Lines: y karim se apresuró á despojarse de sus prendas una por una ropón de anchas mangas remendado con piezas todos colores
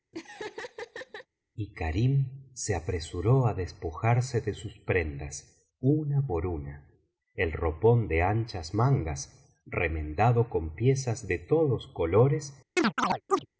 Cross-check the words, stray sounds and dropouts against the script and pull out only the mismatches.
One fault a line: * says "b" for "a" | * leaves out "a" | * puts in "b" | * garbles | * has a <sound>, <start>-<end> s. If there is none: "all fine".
* has a laugh, 0.1-1.3 s
* puts in "el"
* puts in "de"
* has a chirp, 12.8-13.5 s